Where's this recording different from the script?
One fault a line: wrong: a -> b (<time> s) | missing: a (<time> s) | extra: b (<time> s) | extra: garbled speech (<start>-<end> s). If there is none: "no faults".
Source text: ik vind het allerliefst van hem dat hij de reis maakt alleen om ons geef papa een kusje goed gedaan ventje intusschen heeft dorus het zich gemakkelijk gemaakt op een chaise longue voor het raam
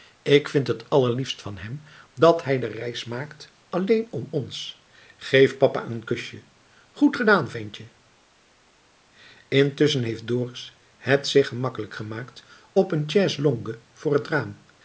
no faults